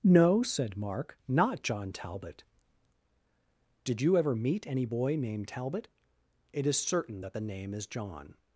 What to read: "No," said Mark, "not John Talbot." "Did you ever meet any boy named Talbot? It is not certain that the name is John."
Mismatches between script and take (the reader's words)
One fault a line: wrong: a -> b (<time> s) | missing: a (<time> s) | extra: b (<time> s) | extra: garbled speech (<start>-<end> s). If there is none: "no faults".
missing: not (6.8 s)